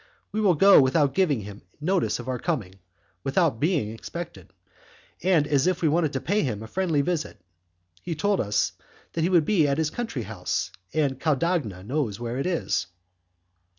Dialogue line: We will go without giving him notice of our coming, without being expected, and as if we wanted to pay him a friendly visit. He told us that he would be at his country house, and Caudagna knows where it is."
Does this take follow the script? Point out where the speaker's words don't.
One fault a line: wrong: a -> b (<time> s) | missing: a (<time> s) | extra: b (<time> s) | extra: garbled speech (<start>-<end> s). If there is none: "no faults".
no faults